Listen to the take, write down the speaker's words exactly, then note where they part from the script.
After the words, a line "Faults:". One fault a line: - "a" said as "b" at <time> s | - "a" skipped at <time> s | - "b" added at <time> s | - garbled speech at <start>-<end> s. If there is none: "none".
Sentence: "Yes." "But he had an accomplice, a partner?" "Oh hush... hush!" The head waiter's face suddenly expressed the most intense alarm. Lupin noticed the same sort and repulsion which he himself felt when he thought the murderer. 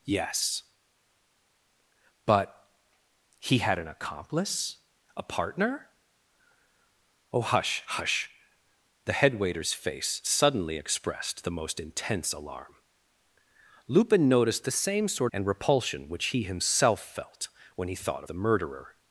"Yes." "But he had an accomplice, a partner?" "Oh hush... hush!" The head waiter's face suddenly expressed the most intense alarm. Lupin noticed the same sort and repulsion which he himself felt when he thought the murderer.
Faults:
none